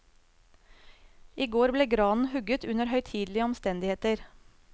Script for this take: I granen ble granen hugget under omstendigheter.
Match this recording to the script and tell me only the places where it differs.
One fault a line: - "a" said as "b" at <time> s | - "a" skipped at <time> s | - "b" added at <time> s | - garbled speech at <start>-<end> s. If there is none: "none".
- "granen" said as "går" at 1.6 s
- "høytidelige" added at 3.0 s